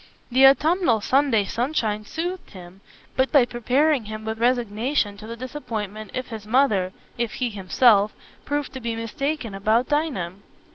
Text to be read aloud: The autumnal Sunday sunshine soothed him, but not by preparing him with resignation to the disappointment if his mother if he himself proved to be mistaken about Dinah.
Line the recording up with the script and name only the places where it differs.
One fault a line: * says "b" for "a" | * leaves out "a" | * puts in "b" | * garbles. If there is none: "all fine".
* leaves out "not"